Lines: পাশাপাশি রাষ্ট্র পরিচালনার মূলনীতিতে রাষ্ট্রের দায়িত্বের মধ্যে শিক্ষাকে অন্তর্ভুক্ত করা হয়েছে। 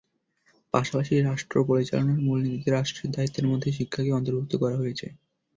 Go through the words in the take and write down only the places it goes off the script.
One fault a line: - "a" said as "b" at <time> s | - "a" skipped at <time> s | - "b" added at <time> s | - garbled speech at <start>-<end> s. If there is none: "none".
none